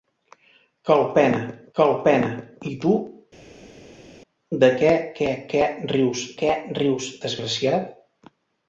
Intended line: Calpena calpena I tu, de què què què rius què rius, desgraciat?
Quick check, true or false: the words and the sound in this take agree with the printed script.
true